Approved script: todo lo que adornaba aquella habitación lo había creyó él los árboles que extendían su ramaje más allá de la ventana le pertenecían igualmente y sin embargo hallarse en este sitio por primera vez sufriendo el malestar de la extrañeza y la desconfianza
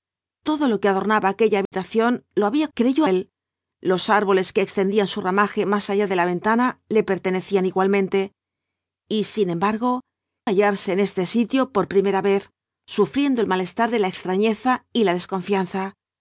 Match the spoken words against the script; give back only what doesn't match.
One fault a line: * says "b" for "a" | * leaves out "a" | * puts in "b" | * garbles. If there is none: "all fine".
all fine